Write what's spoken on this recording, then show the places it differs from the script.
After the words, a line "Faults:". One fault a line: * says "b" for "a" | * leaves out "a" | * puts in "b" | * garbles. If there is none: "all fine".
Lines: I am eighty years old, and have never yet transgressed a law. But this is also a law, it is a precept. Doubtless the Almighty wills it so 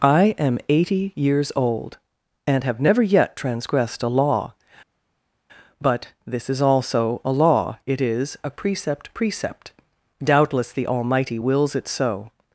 I am eighty years old, and have never yet transgressed a law. But this is also a law, it is a precept precept. Doubtless the Almighty wills it so
Faults:
* puts in "precept"